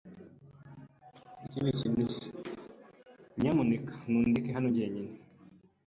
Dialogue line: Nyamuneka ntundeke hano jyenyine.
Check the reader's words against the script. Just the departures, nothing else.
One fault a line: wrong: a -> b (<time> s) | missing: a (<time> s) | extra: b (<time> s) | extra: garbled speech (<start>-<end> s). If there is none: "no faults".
no faults